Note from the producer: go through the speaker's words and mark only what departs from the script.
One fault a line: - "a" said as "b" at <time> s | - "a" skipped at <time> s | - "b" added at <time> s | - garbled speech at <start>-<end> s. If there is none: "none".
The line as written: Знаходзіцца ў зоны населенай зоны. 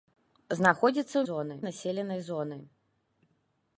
none